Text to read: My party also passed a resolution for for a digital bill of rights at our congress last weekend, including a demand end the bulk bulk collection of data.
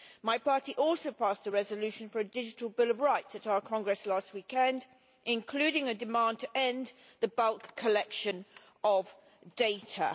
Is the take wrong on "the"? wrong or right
right